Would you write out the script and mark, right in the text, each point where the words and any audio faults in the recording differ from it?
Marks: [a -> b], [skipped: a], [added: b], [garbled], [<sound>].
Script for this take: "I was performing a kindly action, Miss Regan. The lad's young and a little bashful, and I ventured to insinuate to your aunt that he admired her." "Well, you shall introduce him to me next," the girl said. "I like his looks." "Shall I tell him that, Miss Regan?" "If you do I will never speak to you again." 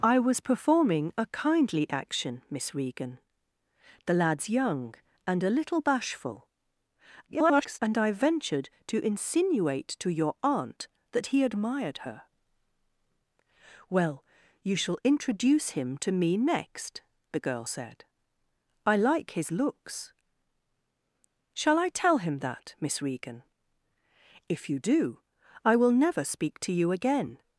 "I was performing a kindly action, Miss Regan. The lad's young and a little bashful, [garbled] and I ventured to insinuate to your aunt that he admired her." "Well, you shall introduce him to me next," the girl said. "I like his looks." "Shall I tell him that, Miss Regan?" "If you do I will never speak to you again."